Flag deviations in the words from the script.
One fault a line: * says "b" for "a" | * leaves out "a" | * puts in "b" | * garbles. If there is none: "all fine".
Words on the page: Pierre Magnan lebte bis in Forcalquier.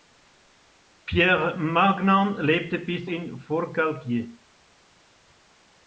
all fine